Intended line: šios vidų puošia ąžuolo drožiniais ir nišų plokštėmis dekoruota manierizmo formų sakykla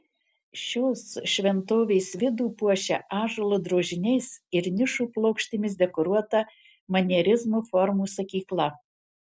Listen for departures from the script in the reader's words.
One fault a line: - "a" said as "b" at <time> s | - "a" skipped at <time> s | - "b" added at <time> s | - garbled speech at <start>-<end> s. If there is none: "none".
- "šventovės" added at 1.3 s